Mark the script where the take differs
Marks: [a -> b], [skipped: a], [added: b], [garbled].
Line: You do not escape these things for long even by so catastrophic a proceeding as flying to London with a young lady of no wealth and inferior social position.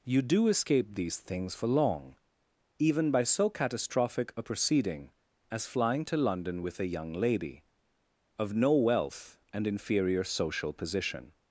You do [skipped: not] escape these things for long even by so catastrophic a proceeding as flying to London with a young lady of no wealth and inferior social position.